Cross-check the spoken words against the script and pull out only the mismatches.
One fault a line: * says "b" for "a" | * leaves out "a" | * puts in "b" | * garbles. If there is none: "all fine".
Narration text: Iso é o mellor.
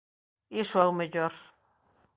all fine